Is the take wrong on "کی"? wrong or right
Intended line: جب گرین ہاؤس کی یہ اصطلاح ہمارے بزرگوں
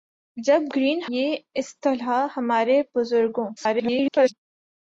wrong